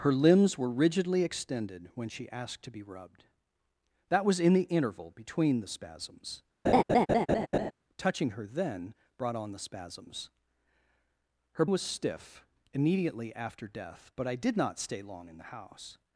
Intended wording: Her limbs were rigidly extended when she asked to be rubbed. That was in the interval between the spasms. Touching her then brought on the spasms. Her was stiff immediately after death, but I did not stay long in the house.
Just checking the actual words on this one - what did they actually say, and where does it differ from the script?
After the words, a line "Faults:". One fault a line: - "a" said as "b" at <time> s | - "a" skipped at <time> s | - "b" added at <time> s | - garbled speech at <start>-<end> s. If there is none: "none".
Her limbs were rigidly extended when she asked to be rubbed. That was in the interval between the spasms. Touching her then brought on the spasms. Her was stiff immediately after death, but I did not stay long in the house.
Faults:
none